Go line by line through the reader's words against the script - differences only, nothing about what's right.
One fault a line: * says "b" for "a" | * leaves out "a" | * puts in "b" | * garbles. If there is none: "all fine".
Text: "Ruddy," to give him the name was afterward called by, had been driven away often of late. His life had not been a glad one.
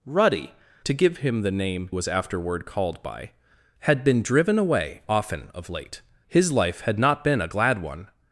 all fine